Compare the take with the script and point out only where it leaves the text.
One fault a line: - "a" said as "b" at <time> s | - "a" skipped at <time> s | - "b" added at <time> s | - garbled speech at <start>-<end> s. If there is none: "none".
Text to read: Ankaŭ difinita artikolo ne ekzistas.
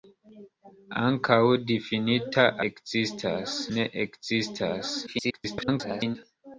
- "artikolo" said as "ekzistas" at 2.7 s
- garbled speech at 5.1-6.2 s